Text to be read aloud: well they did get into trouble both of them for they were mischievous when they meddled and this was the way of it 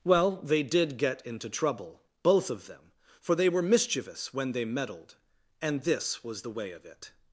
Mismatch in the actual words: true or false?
false